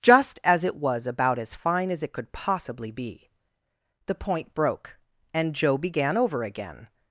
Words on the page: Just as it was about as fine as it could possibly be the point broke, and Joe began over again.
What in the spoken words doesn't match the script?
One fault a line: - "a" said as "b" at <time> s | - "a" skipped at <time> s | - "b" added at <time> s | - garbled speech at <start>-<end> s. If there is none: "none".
none